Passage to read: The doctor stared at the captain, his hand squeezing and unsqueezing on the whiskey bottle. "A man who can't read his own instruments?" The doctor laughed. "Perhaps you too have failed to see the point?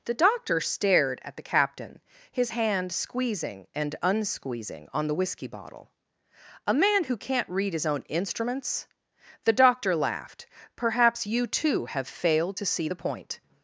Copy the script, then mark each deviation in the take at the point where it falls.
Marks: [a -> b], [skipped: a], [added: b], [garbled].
The doctor stared at the captain, his hand squeezing and unsqueezing on the whiskey bottle. "A man who can't read his own instruments?" The doctor laughed. "Perhaps you too have failed to see the point?